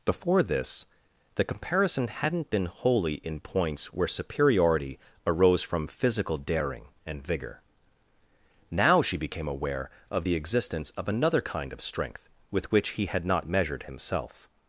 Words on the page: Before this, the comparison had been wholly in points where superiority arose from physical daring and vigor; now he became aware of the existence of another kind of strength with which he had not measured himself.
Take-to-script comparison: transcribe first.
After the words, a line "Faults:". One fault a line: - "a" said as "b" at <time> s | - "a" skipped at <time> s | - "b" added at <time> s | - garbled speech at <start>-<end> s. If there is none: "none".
Before this, the comparison hadn't been wholly in points where superiority arose from physical daring and vigor; now she became aware of the existence of another kind of strength with which he had not measured himself.
Faults:
- "had" said as "hadn't" at 2.1 s
- "he" said as "she" at 9.0 s